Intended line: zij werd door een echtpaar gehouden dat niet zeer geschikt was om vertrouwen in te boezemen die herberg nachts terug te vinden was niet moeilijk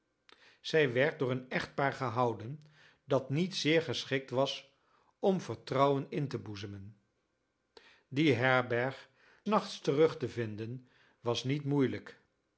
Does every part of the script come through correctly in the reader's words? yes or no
yes